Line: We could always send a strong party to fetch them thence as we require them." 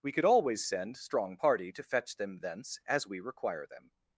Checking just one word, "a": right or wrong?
wrong